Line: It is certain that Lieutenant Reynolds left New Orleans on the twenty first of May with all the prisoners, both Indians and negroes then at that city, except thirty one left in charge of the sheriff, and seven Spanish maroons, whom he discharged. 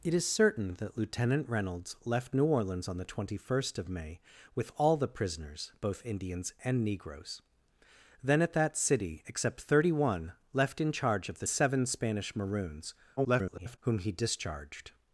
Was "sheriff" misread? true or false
true